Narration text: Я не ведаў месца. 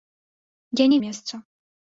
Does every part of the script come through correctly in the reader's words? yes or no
no